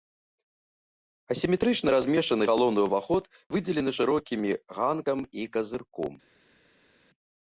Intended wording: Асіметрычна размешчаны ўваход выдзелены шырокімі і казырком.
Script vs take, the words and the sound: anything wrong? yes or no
yes